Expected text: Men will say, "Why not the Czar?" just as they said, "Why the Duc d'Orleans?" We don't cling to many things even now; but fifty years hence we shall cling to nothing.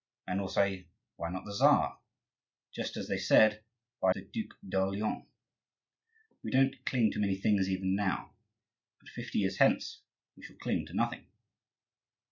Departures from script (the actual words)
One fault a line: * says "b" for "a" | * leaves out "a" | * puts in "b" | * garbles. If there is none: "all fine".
all fine